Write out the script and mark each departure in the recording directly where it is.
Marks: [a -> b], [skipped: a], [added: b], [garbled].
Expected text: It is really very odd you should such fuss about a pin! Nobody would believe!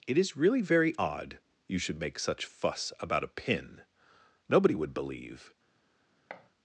It is really very odd you should [added: make] such fuss about a pin! Nobody would believe!